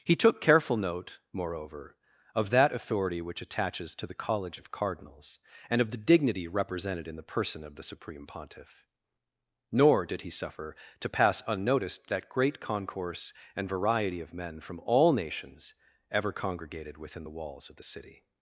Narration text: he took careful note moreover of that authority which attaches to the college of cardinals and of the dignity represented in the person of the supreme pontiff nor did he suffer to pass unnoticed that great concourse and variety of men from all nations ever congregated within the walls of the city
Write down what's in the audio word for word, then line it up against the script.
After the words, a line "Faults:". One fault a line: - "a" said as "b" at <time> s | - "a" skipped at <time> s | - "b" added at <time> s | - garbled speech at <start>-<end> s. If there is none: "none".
he took careful note moreover of that authority which attaches to the college of cardinals and of the dignity represented in the person of the supreme pontiff nor did he suffer to pass unnoticed that great concourse and variety of men from all nations ever congregated within the walls of the city
Faults:
none